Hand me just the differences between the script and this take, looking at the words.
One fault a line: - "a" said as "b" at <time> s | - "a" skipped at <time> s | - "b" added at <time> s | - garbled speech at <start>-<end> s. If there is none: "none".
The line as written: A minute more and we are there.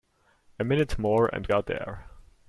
- "we" skipped at 1.4 s